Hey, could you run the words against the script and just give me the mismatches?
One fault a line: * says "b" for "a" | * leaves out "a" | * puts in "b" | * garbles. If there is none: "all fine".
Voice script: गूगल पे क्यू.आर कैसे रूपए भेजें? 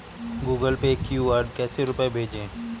all fine